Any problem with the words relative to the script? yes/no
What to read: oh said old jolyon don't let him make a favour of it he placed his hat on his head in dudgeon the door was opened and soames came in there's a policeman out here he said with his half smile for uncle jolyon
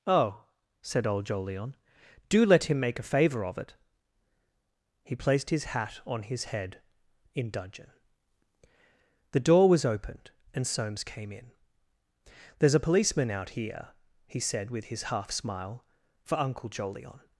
yes